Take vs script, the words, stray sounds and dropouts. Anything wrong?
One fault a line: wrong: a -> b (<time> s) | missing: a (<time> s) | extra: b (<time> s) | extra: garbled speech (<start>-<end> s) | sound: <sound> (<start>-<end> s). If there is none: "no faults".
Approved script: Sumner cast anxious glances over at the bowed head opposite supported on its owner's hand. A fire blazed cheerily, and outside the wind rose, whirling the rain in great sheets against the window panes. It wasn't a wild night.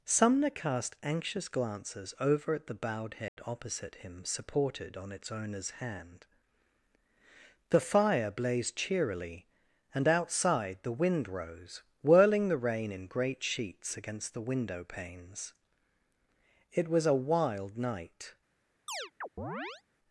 sound: dropout (3.3-3.4 s)
extra: him (4.0 s)
wrong: A -> The (7.7 s)
wrong: wasn't -> was (16.9 s)
sound: chirp (18.9-19.8 s)